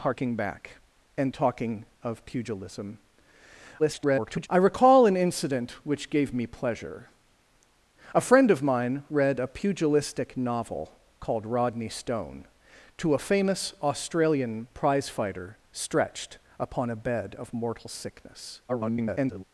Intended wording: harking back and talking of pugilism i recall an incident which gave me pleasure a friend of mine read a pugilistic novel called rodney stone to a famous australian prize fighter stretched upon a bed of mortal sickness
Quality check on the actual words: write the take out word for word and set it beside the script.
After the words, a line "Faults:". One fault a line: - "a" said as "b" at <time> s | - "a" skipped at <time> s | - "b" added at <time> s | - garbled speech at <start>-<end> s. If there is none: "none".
harking back and talking of pugilism [garbled] i recall an incident which gave me pleasure a friend of mine read a pugilistic novel called rodney stone to a famous australian prize fighter stretched upon a bed of mortal sickness [garbled]
Faults:
- garbled speech at 3.8-4.5 s
- garbled speech at 18.7-19.4 s